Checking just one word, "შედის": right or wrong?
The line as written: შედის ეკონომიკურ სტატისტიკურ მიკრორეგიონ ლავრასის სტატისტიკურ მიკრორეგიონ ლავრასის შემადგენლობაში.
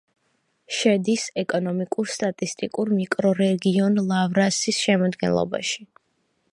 right